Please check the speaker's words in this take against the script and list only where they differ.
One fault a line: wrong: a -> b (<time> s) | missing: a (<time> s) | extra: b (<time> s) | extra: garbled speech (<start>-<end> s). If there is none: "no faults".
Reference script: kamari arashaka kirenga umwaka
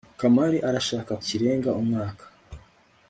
no faults